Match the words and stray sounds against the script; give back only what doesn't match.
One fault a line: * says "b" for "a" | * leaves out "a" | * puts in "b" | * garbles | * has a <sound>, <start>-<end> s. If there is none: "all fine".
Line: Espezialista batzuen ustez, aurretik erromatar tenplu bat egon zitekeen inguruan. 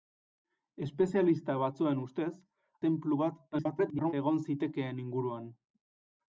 * leaves out "aurretik erromatar"
* garbles